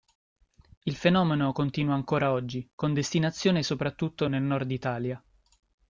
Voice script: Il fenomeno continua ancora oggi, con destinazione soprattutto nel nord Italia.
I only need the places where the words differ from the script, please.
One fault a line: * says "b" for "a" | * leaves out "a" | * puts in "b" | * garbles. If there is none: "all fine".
all fine